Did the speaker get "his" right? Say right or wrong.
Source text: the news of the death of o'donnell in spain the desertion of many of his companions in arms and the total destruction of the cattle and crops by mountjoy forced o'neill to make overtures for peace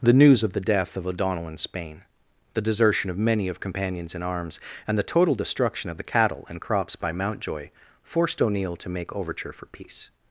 wrong